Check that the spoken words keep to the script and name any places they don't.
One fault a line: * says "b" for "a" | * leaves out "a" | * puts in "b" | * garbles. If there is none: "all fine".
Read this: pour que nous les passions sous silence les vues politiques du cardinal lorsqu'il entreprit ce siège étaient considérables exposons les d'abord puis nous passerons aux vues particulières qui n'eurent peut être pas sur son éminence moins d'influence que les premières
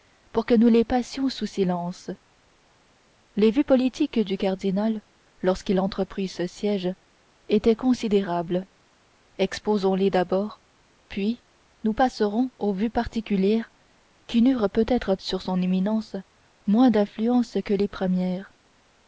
* leaves out "pas"